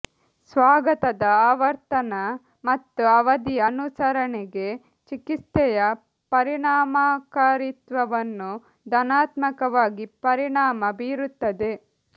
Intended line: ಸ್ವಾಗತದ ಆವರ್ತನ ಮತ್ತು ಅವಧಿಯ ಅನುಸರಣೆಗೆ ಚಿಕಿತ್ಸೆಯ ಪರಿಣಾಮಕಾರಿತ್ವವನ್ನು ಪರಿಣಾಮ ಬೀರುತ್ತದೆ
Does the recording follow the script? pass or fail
fail